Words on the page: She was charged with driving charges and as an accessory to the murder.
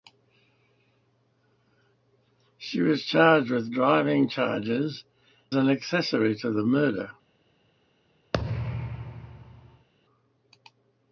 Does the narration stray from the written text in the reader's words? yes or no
yes